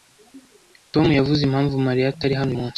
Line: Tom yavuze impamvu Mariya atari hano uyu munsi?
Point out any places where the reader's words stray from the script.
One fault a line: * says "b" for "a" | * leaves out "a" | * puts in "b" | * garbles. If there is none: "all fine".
* leaves out "uyu"